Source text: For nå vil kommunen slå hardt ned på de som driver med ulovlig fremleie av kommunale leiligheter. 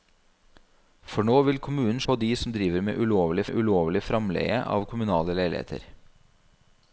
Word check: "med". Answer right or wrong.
right